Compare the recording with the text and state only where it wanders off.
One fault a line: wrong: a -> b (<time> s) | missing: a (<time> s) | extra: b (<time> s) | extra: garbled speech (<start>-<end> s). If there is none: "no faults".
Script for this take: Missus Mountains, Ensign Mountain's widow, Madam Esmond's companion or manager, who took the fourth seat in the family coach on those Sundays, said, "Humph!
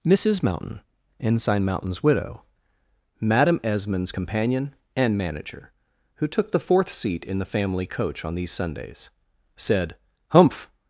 wrong: Mountains -> Mountain (0.4 s)
wrong: or -> and (4.9 s)
wrong: those -> these (8.3 s)